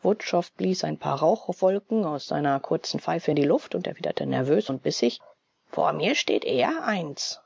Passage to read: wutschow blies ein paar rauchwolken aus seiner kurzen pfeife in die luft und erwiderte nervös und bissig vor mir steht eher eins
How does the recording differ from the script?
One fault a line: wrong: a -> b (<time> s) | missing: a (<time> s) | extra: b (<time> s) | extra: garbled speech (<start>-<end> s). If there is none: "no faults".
no faults